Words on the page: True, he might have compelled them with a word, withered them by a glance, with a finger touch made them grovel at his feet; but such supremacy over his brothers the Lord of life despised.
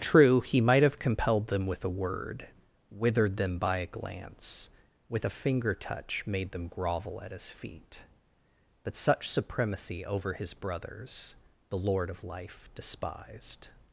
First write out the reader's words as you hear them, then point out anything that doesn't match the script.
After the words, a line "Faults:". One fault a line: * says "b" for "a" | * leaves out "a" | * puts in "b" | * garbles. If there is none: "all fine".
True, he might have compelled them with a word, withered them by a glance, with a finger touch made them grovel at his feet; but such supremacy over his brothers the Lord of life despised.
Faults:
all fine